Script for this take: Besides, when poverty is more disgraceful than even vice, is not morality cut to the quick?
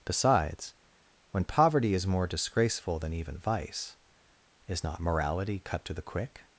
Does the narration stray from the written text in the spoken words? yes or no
no